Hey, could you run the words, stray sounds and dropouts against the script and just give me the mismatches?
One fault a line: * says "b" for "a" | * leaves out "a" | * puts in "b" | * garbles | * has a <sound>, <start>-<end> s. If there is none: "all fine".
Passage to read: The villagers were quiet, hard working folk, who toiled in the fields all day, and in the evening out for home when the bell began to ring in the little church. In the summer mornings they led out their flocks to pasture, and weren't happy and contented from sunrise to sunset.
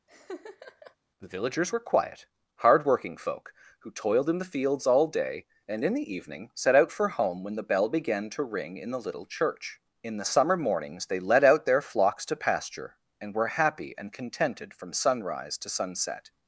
* has a laugh, 0.1-1.0 s
* puts in "set"
* says "were" for "weren't"